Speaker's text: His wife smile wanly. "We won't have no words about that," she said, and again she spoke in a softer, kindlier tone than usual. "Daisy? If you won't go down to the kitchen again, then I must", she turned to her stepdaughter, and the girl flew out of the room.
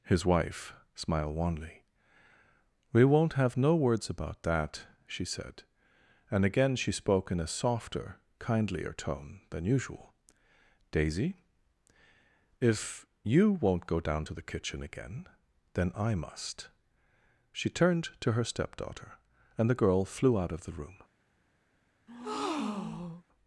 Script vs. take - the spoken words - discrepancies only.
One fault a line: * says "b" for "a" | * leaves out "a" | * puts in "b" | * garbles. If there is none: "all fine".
* says "smiled" for "smile"